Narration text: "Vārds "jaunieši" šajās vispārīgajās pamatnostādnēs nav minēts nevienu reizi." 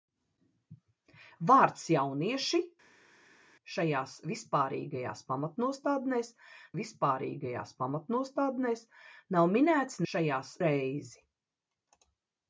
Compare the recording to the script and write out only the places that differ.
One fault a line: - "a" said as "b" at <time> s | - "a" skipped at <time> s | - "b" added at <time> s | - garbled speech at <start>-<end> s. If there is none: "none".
- "vispārīgajās pamatnostādnēs" added at 6.8 s
- "nevienu" said as "šajās" at 10.1 s